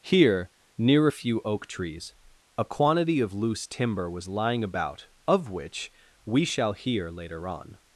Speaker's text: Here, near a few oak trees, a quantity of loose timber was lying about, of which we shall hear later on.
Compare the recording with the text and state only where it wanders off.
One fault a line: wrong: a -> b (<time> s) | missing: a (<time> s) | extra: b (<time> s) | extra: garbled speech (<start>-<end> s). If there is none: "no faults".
no faults